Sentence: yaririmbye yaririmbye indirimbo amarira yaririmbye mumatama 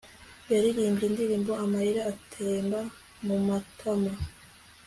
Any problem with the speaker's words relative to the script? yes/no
yes